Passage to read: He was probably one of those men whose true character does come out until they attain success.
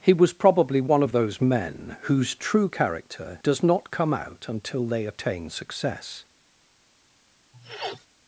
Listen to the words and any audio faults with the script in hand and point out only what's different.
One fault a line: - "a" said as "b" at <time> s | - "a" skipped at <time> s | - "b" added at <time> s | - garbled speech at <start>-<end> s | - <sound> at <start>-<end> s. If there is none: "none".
- "not" added at 3.6 s
- sniff at 7.5-8.1 s